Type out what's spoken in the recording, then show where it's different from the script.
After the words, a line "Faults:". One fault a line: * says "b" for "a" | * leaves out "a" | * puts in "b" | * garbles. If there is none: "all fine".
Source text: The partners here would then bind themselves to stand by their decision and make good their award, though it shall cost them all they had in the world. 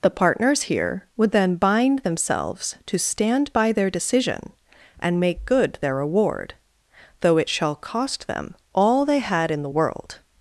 The partners here would then bind themselves to stand by their decision and make good their award, though it shall cost them all they had in the world.
Faults:
all fine